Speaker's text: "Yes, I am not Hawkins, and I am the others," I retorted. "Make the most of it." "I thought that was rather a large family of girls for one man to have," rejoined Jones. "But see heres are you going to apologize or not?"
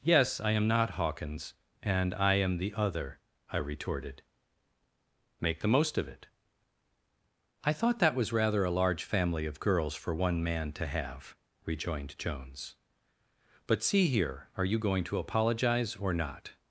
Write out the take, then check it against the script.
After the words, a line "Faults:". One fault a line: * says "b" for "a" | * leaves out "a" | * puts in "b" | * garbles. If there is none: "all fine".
"Yes, I am not Hawkins, and I am the other," I retorted. "Make the most of it." "I thought that was rather a large family of girls for one man to have," rejoined Jones. "But see here are you going to apologize or not?"
Faults:
* says "other" for "others"
* says "here" for "heres"